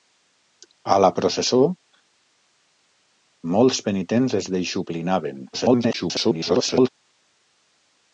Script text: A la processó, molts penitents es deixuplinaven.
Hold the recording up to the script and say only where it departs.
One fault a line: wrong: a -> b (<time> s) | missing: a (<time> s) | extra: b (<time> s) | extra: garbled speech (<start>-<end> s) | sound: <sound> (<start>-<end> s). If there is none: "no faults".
extra: garbled speech (5.5-6.9 s)